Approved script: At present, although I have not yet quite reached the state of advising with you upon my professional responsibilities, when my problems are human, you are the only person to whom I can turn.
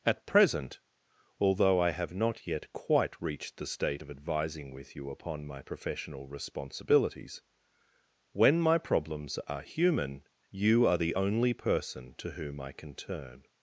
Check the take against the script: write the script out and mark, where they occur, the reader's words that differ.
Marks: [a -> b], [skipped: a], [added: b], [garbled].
At present, although I have not yet quite reached the state of advising with you upon my professional responsibilities, when my problems are human, you are the only person to whom I can turn.